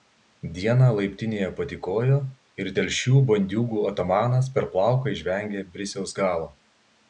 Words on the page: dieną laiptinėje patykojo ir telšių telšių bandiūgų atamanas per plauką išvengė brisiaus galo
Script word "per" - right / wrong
right